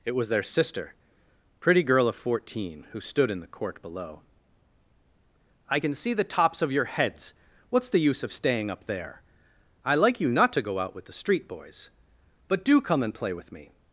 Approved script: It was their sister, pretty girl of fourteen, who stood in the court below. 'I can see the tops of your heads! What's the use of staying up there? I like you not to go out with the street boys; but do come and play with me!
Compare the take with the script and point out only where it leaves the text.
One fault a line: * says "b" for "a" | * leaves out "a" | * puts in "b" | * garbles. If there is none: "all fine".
all fine